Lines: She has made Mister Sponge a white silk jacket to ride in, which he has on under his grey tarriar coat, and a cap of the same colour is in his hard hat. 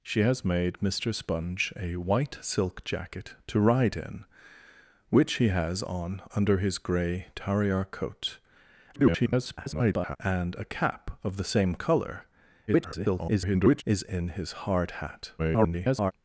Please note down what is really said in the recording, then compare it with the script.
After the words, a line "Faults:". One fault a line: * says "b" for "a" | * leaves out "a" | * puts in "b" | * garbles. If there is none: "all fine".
She has made Mister Sponge a white silk jacket to ride in, which he has on under his grey tarriar coat, [garbled] and a cap of the same colour [garbled] is in his hard hat. [garbled]
Faults:
* garbles
* garbles
* garbles